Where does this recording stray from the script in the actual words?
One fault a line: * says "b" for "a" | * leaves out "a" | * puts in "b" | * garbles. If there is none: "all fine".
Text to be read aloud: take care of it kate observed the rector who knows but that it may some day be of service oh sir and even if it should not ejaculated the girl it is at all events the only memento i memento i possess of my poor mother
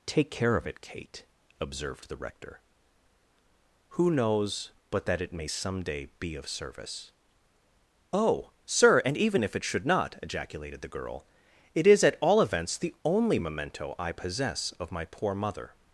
* leaves out "memento i"